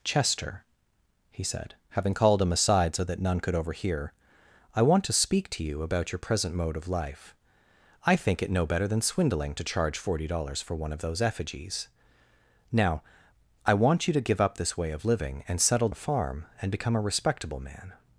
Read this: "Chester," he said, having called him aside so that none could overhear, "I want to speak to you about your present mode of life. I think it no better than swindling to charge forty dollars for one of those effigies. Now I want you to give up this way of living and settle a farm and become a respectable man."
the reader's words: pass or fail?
pass